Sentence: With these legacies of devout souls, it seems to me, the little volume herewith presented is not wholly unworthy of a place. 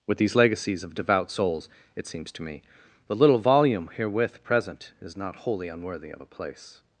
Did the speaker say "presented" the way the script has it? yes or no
no